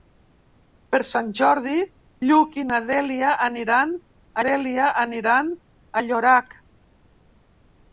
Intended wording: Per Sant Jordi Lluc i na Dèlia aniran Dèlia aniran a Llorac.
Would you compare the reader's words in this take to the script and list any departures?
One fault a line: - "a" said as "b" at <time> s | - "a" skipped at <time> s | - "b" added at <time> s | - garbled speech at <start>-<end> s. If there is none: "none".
none